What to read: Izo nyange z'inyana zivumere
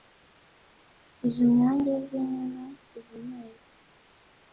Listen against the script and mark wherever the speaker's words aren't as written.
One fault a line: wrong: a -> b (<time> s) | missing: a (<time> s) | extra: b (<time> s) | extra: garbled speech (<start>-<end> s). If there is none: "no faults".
no faults